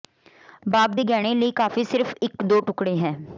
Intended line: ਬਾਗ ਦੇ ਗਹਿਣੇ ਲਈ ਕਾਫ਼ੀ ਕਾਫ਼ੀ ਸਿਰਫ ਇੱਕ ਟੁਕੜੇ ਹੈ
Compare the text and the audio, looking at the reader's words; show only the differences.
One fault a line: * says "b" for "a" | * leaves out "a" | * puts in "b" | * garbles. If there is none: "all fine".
* leaves out "ਕਾਫ਼ੀ"
* puts in "ਦੋ"